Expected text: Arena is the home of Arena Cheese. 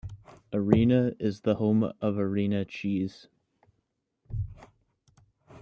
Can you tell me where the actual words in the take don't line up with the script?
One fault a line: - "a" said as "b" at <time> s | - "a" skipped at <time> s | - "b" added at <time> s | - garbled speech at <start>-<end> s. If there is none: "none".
none